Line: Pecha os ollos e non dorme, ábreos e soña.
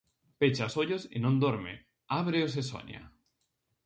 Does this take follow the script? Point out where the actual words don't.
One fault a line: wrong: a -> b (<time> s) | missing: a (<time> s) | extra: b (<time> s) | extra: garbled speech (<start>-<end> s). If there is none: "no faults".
no faults